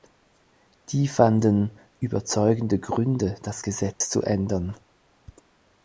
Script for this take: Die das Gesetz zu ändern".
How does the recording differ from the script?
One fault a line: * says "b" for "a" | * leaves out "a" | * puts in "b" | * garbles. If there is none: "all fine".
* puts in "fanden überzeugende Gründe"